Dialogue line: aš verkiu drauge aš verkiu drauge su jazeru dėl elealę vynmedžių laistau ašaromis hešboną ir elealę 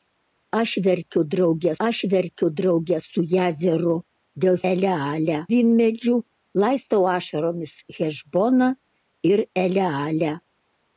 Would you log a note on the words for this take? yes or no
no